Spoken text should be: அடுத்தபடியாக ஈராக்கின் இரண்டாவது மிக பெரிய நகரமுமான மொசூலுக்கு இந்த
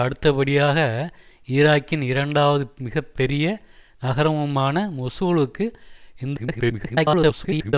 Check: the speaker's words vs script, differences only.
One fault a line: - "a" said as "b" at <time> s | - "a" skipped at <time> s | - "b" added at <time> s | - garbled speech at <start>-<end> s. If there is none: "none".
- garbled speech at 6.4-7.7 s